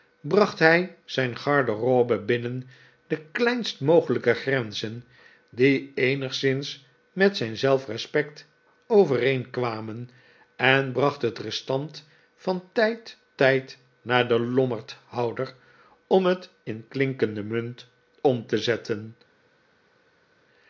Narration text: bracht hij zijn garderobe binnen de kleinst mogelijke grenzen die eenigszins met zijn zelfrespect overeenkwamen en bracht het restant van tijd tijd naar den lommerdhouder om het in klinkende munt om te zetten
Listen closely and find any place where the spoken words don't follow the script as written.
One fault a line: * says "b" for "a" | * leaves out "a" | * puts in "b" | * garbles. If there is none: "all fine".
all fine